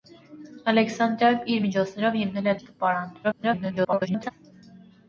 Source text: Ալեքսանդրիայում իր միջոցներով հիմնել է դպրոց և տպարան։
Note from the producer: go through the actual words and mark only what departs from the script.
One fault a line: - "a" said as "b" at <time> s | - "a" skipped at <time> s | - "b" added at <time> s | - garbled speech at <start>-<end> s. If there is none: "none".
- "դպրոց" skipped at 2.6 s
- garbled speech at 3.2-4.3 s